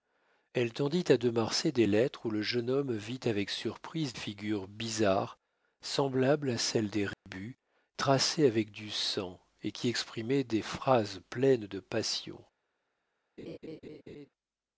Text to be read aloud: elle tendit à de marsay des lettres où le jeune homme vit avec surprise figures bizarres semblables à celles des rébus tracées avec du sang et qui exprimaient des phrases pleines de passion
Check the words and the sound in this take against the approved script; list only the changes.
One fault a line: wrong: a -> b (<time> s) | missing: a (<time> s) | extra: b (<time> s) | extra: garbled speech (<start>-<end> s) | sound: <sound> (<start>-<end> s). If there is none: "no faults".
sound: dropout (7.1-7.3 s)
sound: laugh (13.4-14.3 s)